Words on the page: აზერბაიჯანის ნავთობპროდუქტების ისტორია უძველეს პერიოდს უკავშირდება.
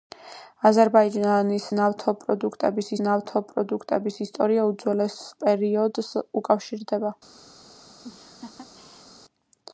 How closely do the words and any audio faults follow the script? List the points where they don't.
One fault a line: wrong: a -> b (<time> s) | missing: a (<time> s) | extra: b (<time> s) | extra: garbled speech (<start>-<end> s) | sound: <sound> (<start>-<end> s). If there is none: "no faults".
extra: ნავთობპროდუქტების (3.1 s)
sound: laugh (8.0-9.1 s)